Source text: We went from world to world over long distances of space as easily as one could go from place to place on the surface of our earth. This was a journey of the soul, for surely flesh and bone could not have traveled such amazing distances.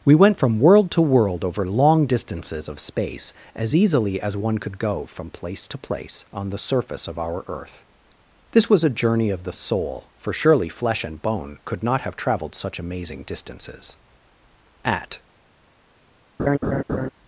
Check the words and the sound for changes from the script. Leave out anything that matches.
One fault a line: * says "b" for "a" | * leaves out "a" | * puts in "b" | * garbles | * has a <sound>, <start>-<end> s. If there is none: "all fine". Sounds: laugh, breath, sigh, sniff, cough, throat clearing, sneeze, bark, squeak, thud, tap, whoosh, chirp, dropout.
* puts in "At"
* has a laugh, 16.4-17.1 s